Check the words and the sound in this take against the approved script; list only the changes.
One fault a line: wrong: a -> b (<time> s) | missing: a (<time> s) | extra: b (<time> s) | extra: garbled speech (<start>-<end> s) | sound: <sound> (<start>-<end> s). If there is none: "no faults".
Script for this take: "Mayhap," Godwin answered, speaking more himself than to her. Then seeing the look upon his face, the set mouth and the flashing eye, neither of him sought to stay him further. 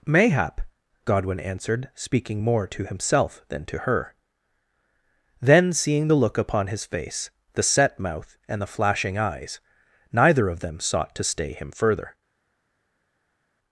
extra: to (2.7 s)
wrong: eye -> eyes (9.2 s)
wrong: him -> them (10.6 s)